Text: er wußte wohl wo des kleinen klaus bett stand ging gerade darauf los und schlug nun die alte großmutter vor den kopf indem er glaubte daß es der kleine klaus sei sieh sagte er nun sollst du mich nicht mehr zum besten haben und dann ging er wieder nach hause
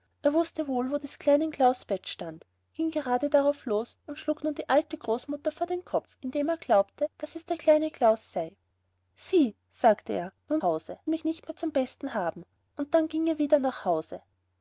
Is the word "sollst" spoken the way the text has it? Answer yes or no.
no